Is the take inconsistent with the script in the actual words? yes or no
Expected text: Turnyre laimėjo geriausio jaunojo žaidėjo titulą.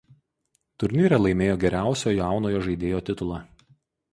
no